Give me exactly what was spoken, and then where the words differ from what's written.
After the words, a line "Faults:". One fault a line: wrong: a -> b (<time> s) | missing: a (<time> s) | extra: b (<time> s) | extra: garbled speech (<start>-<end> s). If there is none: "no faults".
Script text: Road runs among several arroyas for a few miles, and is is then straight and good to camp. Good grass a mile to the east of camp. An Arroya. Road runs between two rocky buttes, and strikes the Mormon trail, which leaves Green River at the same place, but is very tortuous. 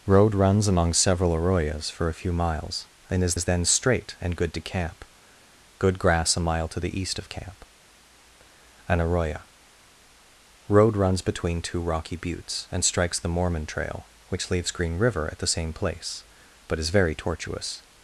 Road runs among several arroyas for a few miles, and is is then straight and good to camp. Good grass a mile to the east of camp. An Arroya. Road runs between two rocky buttes, and strikes the Mormon trail, which leaves Green River at the same place, but is very tortuous.
Faults:
no faults